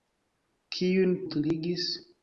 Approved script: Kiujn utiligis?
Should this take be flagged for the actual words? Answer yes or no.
no